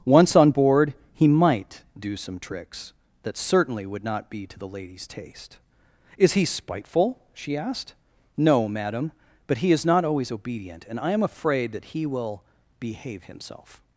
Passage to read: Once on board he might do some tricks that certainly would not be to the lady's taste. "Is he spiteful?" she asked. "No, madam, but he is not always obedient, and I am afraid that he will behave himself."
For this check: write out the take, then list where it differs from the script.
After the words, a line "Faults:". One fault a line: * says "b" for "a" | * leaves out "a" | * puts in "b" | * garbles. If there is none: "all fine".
Once on board he might do some tricks that certainly would not be to the lady's taste. "Is he spiteful?" she asked. "No, madam, but he is not always obedient, and I am afraid that he will behave himself."
Faults:
all fine